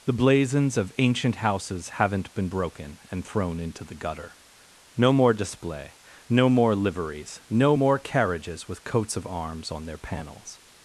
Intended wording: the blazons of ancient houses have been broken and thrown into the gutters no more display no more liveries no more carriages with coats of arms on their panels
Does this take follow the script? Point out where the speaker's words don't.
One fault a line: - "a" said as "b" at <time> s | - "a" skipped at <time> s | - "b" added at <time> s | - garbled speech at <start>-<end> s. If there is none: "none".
- "have" said as "haven't" at 1.9 s
- "gutters" said as "gutter" at 3.9 s